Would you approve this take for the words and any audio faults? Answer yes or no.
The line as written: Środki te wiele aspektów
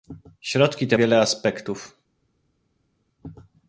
yes